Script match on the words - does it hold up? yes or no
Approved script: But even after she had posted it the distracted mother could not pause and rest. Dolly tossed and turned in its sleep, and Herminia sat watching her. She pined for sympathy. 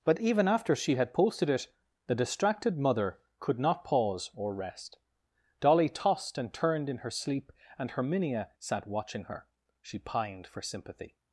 no